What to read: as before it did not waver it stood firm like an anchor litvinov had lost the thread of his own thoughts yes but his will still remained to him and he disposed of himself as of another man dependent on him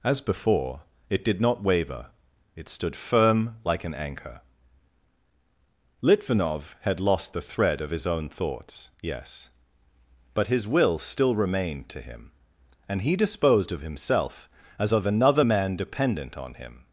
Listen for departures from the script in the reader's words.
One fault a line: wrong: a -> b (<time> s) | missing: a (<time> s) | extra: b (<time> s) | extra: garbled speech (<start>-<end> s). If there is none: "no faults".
no faults